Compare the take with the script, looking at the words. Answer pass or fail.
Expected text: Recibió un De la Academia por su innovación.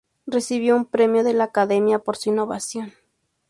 fail